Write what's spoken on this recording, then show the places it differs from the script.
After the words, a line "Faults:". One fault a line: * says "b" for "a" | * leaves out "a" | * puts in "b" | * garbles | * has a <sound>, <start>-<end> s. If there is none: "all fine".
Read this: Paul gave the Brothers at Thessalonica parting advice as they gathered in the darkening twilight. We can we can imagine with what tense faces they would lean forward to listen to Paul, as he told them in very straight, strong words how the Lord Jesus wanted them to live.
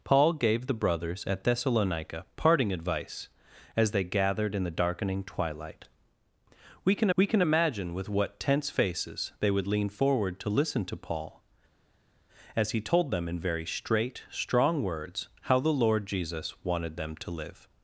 Paul gave the Brothers at Thessalonica parting advice as they gathered in the darkening twilight. We can we can imagine with what tense faces they would lean forward to listen to Paul, as he told them in very straight, strong words how the Lord Jesus wanted them to live.
Faults:
all fine